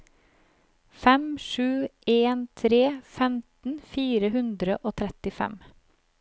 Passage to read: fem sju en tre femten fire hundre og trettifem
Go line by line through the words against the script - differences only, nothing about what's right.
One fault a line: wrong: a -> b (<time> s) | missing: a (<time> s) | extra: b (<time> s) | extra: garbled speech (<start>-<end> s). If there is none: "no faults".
no faults